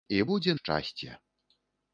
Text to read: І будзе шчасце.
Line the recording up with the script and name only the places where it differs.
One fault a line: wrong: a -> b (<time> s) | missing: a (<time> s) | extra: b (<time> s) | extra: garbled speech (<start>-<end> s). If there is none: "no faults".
no faults